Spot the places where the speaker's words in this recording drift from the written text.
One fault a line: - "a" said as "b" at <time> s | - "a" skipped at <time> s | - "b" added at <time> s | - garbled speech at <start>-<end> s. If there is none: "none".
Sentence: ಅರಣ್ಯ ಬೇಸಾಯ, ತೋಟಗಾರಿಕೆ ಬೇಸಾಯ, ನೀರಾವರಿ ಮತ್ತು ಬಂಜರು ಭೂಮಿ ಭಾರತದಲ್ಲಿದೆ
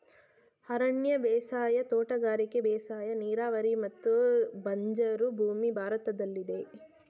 none